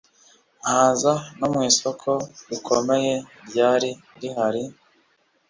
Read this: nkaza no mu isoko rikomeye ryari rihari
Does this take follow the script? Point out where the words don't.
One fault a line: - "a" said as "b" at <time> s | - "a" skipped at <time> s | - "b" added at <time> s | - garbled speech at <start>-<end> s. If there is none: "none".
none